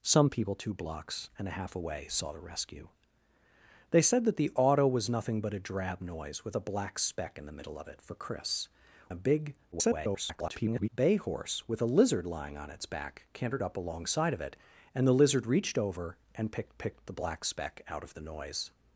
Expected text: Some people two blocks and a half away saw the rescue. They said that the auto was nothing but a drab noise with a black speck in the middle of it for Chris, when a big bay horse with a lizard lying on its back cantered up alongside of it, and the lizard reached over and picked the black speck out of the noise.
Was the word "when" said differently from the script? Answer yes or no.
yes